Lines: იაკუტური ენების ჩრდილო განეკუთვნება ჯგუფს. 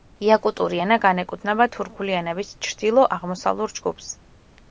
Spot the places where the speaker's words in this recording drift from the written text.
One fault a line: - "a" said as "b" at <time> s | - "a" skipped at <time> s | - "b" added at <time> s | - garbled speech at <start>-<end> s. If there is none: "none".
- "ენა განეკუთვნება თურქული" added at 0.8 s
- "განეკუთვნება" said as "აღმოსავლურ" at 3.2 s